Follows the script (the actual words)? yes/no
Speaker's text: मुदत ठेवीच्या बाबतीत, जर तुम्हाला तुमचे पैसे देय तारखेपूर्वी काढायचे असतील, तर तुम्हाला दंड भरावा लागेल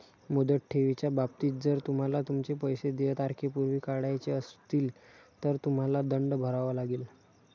yes